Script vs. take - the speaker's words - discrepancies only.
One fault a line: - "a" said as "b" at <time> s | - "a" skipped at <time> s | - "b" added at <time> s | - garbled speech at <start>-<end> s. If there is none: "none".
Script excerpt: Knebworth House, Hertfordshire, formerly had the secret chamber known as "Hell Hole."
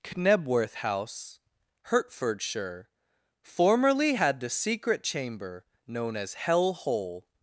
none